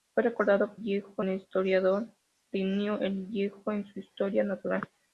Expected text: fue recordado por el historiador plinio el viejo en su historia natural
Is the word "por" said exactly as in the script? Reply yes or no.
no